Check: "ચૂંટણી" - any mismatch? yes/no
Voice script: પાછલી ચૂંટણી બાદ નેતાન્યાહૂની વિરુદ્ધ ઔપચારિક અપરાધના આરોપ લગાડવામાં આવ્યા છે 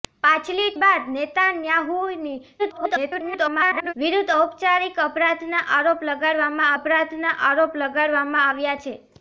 yes